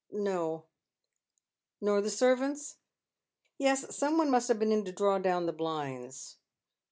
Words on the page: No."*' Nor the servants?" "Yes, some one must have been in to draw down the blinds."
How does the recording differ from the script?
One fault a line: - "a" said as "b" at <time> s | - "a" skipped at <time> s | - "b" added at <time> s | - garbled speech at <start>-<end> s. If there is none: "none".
none